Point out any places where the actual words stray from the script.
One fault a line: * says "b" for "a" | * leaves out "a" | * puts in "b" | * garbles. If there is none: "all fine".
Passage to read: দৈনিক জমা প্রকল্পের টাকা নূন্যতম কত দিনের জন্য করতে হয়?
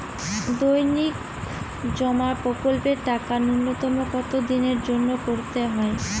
all fine